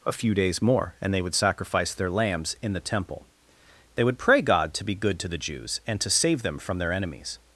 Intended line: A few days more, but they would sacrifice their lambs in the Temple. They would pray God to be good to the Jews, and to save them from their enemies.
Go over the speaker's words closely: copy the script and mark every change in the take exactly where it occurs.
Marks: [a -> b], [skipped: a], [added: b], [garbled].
A few days more, [but -> and] they would sacrifice their lambs in the Temple. They would pray God to be good to the Jews, and to save them from their enemies.